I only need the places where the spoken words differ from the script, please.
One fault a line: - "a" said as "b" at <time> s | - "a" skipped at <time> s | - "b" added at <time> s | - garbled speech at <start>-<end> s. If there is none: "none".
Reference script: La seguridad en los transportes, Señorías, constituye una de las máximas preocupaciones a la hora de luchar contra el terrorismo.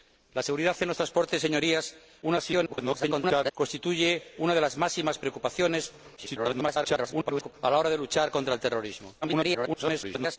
- garbled speech at 2.2-3.5 s
- garbled speech at 6.2-7.5 s
- garbled speech at 9.2-10.4 s